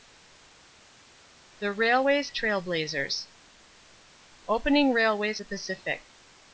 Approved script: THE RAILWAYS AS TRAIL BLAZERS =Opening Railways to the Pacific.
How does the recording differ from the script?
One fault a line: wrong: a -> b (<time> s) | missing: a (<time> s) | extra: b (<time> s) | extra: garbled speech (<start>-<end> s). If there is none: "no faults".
missing: AS (2.3 s)
missing: to (5.4 s)